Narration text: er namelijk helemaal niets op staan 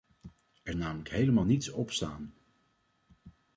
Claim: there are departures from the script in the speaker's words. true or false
false